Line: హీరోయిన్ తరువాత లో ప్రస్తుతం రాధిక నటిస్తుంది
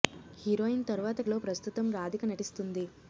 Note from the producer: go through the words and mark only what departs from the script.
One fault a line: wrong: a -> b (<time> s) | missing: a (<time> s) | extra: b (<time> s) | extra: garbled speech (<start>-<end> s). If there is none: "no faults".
no faults